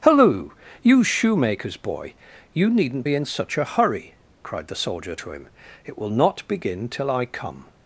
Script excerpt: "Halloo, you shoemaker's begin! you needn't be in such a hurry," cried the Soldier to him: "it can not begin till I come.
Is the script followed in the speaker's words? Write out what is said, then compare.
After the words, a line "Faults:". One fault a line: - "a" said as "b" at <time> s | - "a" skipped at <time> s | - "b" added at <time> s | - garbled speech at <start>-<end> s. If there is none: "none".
"Halloo, you shoemaker's boy! you needn't be in such a hurry," cried the Soldier to him: "it will not begin till I come.
Faults:
- "begin" said as "boy" at 1.8 s
- "can" said as "will" at 6.0 s